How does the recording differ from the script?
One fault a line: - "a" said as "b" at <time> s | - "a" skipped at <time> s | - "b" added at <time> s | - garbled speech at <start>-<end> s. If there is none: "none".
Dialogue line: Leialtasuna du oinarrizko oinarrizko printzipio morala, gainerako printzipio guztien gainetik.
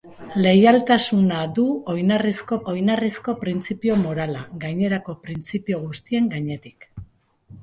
none